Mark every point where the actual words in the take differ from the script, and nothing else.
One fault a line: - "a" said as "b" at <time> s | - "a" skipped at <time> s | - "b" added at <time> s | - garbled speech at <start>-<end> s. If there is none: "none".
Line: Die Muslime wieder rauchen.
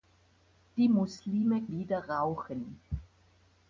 none